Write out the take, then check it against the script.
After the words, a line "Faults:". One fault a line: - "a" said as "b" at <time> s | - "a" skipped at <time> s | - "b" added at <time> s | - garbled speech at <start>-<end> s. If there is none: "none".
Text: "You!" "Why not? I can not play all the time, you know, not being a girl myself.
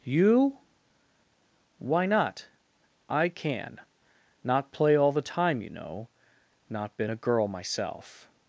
"You!" "Why not? I can not play all the time, you know, not been a girl myself.
Faults:
- "being" said as "been" at 7.0 s